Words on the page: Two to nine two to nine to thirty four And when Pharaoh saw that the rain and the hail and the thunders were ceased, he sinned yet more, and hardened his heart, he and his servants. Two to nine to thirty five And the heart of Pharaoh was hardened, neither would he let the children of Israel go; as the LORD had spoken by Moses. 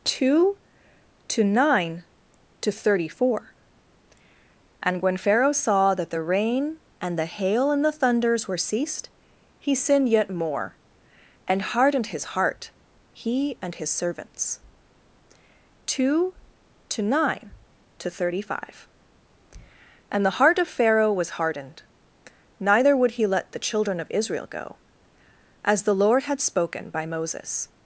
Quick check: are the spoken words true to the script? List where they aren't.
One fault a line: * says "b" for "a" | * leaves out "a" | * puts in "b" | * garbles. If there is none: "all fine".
* leaves out "two to nine"